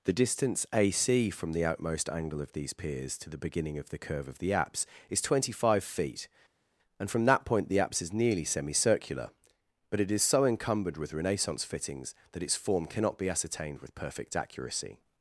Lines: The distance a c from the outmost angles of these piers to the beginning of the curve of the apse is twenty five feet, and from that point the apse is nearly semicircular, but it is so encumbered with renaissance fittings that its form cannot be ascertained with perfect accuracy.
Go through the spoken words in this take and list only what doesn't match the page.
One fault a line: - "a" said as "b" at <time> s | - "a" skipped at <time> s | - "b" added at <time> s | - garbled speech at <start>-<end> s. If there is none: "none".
- "angles" said as "angle" at 2.1 s